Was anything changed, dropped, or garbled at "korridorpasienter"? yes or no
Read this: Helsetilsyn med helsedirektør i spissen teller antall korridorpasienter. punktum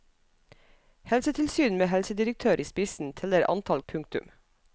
yes